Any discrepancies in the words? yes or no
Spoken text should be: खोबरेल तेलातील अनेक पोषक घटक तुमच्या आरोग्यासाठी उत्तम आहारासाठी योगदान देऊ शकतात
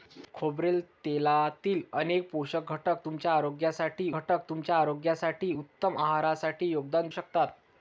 yes